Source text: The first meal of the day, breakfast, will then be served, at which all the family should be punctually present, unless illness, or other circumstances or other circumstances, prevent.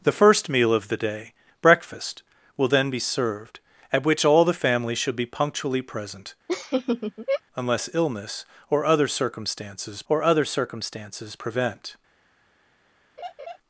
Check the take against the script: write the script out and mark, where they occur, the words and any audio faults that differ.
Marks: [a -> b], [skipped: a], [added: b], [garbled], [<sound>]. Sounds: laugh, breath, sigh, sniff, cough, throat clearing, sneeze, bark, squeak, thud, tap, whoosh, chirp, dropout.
The first meal of the day, breakfast, will then be served, at which all the family should be punctually present, [laugh] unless illness, or other circumstances or other circumstances, prevent. [laugh]